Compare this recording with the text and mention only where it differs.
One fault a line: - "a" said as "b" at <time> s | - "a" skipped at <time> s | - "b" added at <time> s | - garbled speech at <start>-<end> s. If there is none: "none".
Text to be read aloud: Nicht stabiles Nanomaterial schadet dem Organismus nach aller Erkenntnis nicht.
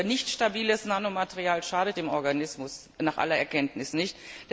none